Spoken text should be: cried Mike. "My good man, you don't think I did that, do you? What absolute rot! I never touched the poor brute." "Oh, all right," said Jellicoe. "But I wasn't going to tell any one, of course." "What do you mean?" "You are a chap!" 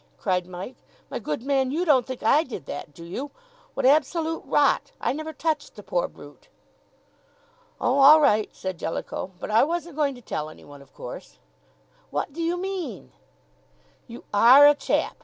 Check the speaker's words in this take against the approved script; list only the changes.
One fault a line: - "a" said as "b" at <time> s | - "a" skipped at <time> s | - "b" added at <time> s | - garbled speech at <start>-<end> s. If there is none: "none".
none